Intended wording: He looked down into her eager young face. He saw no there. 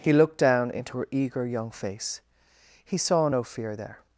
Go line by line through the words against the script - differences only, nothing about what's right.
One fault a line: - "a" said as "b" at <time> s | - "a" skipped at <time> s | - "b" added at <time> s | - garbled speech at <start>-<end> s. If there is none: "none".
- "fear" added at 3.4 s